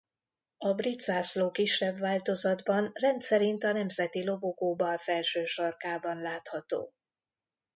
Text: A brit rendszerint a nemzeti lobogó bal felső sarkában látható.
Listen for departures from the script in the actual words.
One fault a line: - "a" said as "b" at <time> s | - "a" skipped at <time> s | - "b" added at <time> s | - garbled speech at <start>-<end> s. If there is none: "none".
- "zászló kisebb változatban" added at 1.0 s